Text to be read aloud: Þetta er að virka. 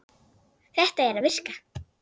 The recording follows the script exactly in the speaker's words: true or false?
true